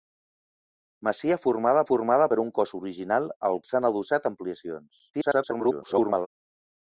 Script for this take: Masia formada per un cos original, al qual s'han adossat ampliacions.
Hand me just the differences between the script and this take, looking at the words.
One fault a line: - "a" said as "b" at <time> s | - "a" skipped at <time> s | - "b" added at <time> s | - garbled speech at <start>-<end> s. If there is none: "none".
- "formada" added at 1.9 s
- "qual" skipped at 3.6 s
- garbled speech at 5.1-6.3 s